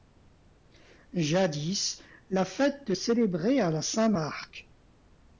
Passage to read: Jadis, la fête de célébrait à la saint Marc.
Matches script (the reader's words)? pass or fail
pass